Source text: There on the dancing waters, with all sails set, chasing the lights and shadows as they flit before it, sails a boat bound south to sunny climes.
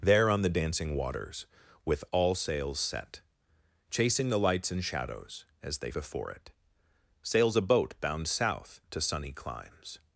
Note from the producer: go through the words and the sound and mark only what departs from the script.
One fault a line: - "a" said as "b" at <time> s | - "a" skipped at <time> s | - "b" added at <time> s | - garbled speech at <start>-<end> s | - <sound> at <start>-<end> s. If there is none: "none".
- "flit" skipped at 5.9 s